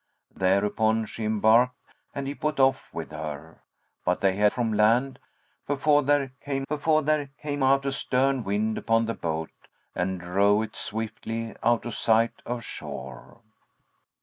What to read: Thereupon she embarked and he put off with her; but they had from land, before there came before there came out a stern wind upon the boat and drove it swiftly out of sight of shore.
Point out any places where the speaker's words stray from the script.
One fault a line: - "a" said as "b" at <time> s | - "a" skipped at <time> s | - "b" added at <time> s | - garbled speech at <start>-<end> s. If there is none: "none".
none